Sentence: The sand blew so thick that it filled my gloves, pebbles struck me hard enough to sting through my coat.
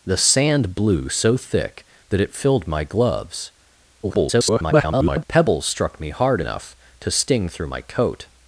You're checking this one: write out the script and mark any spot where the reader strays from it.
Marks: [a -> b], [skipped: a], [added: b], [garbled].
The sand blew so thick that it filled my gloves, [garbled] pebbles struck me hard enough to sting through my coat.